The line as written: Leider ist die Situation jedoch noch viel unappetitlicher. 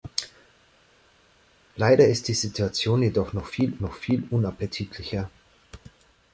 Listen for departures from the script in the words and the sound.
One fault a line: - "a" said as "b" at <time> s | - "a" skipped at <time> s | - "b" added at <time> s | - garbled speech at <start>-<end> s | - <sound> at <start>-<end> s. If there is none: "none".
- "noch viel" added at 3.8 s